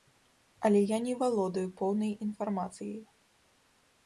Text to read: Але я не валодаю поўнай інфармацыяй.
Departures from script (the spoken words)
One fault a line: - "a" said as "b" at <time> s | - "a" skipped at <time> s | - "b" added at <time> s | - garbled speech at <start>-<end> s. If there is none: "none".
none